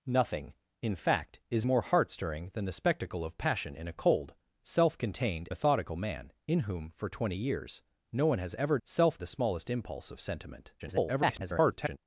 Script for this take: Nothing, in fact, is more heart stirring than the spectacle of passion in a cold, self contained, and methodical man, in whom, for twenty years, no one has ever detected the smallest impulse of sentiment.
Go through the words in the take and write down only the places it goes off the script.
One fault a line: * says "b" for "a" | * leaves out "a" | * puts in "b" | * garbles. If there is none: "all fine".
* leaves out "and"
* says "self" for "detected"
* garbles